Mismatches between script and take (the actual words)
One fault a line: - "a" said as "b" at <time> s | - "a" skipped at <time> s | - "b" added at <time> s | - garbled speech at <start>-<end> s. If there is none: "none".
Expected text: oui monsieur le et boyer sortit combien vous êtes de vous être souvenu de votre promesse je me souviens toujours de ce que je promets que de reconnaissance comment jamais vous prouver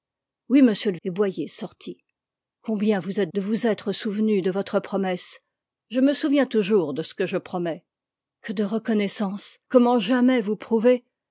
none